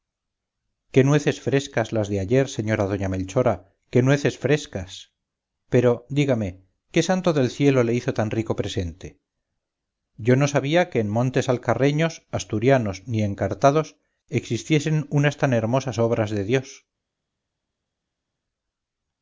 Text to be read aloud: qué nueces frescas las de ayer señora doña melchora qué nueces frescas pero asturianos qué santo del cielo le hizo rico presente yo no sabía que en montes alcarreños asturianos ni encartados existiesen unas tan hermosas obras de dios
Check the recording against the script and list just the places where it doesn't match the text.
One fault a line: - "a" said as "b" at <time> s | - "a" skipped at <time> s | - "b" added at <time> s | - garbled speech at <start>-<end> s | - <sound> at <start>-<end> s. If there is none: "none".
- "asturianos" said as "dígame" at 6.1 s
- "tan" added at 8.2 s